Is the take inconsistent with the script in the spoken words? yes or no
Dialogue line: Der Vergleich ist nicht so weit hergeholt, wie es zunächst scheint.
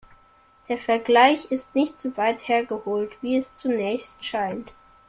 no